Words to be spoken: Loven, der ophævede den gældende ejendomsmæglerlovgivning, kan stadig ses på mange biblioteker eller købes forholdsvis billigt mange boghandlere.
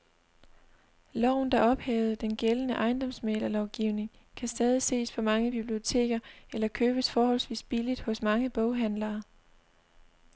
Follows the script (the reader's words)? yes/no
no